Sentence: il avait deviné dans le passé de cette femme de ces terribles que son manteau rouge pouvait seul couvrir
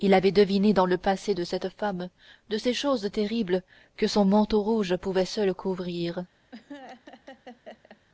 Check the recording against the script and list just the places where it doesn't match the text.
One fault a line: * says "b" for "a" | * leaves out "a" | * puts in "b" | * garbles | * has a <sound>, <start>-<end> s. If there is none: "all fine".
* puts in "choses"
* has a laugh, 6.5-8.0 s